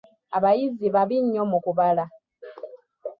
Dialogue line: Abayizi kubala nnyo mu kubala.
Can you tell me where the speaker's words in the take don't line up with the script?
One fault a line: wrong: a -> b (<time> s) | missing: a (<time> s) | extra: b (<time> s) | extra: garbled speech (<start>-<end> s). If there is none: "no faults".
wrong: kubala -> babi (0.9 s)